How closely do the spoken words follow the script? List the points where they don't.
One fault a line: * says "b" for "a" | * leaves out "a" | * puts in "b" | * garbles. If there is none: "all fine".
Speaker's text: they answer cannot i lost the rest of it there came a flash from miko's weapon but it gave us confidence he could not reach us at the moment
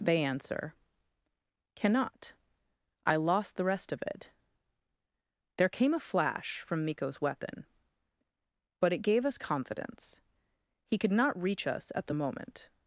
all fine